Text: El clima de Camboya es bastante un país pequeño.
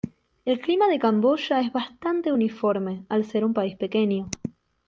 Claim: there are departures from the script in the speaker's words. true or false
true